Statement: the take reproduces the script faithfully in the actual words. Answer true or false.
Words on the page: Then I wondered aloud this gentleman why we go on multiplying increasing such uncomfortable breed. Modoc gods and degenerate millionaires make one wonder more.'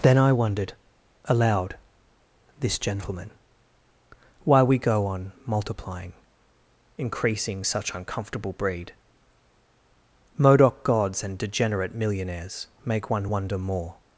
true